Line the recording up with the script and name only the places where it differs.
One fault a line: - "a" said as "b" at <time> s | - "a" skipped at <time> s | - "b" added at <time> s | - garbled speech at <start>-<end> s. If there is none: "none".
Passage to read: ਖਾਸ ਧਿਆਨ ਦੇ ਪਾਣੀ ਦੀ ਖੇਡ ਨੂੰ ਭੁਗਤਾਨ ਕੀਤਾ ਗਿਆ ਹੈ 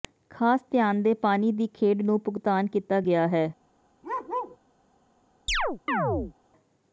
none